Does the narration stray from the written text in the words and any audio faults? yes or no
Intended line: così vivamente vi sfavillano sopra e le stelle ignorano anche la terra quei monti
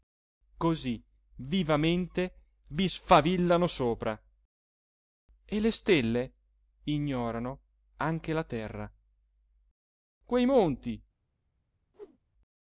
yes